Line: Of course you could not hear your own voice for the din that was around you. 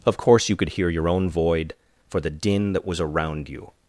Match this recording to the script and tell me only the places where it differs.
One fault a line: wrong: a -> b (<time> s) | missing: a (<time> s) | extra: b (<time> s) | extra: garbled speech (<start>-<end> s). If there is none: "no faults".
missing: not (0.7 s)
wrong: voice -> void (1.3 s)